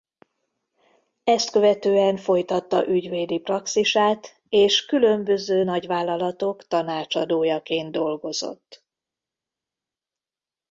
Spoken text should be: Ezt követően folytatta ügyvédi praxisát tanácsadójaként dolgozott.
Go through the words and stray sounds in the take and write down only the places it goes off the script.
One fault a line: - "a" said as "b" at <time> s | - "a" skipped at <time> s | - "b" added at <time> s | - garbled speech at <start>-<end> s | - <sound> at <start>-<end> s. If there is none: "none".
- "és különböző nagyvállalatok" added at 4.5 s